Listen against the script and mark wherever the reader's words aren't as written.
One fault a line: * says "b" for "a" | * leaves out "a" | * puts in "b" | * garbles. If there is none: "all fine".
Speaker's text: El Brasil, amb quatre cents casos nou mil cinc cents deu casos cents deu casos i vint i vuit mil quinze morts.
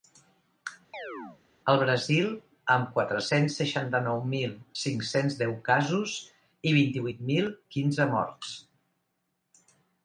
* says "seixanta" for "casos"
* leaves out "cents deu casos"